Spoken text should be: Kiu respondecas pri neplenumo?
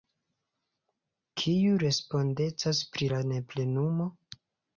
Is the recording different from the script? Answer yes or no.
yes